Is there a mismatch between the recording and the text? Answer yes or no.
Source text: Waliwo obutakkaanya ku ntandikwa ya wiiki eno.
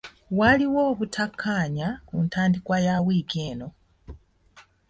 no